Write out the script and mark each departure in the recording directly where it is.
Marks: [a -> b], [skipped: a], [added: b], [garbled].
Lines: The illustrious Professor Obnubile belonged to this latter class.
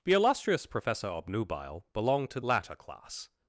The illustrious Professor Obnubile belonged to [skipped: this] latter class.